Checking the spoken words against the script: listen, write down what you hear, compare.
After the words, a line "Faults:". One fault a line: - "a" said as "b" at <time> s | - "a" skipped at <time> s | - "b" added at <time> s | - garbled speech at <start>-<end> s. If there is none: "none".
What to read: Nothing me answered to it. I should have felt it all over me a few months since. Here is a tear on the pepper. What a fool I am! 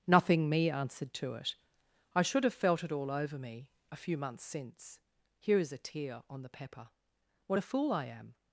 Nothing me answered to it. I should have felt it all over me a few months since. Here is a tear on the pepper. What a fool I am!
Faults:
none